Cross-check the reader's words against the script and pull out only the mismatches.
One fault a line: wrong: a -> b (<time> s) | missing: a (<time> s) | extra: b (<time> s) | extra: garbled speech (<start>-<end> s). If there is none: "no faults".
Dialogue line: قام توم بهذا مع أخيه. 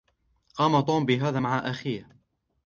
no faults